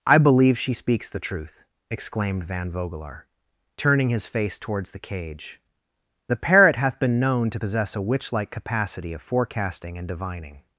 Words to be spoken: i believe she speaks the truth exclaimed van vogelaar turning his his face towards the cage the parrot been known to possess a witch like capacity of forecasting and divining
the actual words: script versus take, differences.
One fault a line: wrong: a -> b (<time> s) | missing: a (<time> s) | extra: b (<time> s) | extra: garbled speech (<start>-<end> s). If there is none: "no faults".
missing: his (4.3 s)
extra: hath (6.8 s)